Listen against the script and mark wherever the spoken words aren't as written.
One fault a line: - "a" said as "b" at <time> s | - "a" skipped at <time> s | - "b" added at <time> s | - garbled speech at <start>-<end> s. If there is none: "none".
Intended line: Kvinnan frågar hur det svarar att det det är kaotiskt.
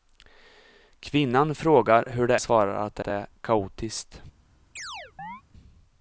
none